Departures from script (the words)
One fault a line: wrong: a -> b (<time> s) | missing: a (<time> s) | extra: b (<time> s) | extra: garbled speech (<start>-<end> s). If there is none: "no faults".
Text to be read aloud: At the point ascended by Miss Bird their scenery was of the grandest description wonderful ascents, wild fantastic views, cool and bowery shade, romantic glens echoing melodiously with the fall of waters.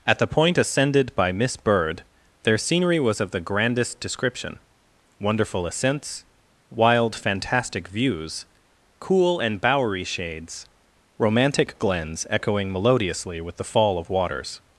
wrong: shade -> shades (10.1 s)